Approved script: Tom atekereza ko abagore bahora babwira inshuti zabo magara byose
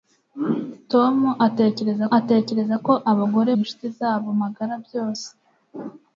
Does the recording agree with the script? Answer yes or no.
no